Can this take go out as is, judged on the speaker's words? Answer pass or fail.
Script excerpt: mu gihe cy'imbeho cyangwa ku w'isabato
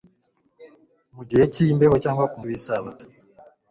pass